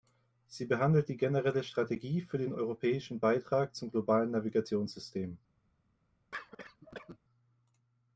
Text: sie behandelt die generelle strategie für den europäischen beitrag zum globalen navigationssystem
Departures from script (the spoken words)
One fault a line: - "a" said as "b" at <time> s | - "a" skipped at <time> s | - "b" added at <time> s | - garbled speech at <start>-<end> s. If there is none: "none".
none